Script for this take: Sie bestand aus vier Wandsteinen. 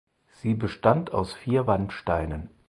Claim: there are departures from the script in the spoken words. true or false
false